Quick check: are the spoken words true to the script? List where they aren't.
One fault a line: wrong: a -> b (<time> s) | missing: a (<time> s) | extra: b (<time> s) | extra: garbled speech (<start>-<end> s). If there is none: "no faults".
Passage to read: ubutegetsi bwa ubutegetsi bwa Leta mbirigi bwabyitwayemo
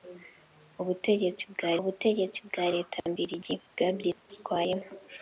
no faults